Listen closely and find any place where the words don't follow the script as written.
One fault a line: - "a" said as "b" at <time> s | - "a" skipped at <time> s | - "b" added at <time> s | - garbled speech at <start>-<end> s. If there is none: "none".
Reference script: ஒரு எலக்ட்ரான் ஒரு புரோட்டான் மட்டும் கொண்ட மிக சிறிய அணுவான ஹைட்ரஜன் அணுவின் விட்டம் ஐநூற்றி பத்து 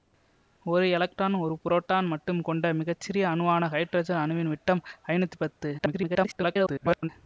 - garbled speech at 5.8-7.1 s